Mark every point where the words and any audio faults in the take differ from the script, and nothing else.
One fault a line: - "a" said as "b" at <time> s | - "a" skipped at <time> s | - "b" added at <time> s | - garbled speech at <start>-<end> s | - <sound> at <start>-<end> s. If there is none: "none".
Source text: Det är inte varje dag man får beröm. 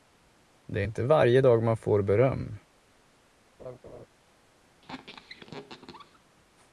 - laugh at 3.6-4.1 s
- squeak at 4.8-6.2 s